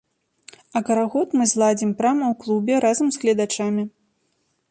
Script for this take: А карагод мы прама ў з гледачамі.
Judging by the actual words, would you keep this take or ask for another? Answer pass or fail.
fail